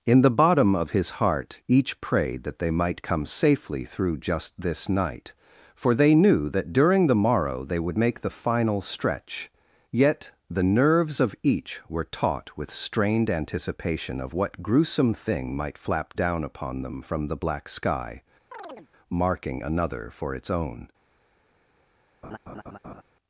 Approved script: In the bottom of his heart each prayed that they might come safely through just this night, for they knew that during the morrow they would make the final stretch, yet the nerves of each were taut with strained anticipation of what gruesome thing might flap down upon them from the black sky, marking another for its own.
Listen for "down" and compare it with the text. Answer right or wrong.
right